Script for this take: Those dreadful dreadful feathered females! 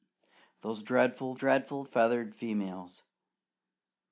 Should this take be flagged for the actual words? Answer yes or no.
no